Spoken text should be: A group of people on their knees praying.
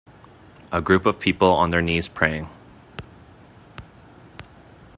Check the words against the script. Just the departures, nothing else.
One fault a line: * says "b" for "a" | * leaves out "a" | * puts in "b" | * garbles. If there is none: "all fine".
all fine